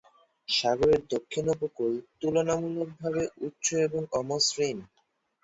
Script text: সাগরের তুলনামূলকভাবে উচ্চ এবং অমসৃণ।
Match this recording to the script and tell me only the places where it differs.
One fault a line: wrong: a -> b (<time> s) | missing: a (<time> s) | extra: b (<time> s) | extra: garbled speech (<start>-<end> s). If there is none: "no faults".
extra: দক্ষিণ উপকূল (1.1 s)